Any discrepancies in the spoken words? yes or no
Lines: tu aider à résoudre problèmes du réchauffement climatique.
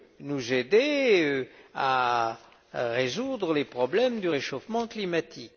yes